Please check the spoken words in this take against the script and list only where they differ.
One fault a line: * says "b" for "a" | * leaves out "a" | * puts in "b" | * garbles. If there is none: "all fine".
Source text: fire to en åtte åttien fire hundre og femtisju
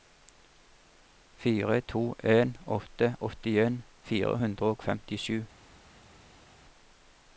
all fine